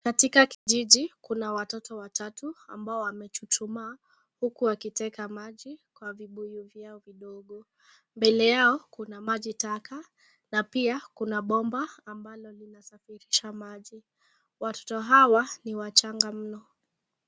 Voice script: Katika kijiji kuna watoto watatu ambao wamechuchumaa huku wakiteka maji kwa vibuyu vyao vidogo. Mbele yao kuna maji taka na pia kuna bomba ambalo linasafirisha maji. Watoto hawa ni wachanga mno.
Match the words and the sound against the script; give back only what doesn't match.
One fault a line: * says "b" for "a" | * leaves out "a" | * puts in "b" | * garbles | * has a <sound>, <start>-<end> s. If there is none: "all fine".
* has a dropout, 0.5-0.7 s